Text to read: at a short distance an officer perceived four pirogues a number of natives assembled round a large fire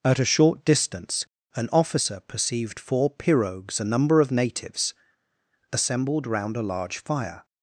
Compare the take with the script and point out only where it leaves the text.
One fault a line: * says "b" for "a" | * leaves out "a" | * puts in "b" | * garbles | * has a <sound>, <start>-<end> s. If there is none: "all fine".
all fine